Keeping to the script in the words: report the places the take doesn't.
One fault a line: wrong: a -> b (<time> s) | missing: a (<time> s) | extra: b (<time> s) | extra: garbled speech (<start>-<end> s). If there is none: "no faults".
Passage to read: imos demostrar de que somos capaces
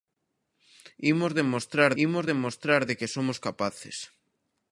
extra: imos demostrar (2.0 s)